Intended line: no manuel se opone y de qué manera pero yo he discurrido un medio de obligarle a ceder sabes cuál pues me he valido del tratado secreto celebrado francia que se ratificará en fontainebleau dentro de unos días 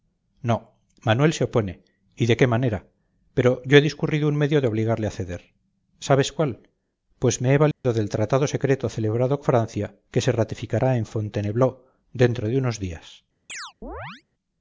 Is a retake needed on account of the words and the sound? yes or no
yes